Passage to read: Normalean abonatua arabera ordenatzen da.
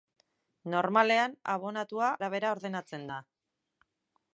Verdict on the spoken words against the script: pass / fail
pass